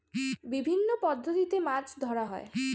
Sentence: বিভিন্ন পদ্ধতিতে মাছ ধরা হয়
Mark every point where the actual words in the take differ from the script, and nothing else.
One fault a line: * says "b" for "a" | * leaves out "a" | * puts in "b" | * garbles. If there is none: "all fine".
all fine